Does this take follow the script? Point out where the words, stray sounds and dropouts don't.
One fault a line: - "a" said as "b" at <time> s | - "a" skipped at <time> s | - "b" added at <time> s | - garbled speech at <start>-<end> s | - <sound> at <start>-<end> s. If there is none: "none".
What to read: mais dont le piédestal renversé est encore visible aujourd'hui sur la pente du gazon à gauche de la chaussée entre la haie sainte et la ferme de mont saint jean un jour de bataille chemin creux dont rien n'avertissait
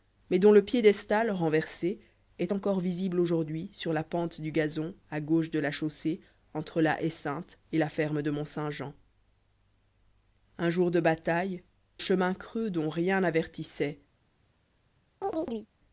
- chirp at 15.2-15.7 s